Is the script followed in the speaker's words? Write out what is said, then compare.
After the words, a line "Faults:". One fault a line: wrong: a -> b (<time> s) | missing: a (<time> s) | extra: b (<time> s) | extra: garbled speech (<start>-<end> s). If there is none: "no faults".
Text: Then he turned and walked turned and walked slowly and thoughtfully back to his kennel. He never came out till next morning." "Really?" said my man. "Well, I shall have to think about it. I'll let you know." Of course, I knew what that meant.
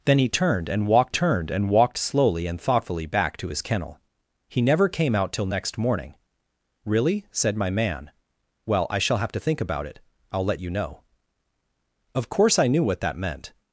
Then he turned and walked turned and walked slowly and thoughtfully back to his kennel. He never came out till next morning." "Really?" said my man. "Well, I shall have to think about it. I'll let you know." Of course, I knew what that meant.
Faults:
no faults